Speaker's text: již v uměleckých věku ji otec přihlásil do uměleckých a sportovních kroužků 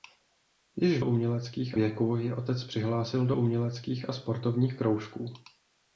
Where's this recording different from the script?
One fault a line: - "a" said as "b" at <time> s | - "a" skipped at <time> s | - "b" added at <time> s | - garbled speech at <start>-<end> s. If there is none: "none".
none